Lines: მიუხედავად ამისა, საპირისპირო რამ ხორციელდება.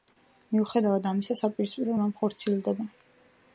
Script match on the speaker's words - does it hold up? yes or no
yes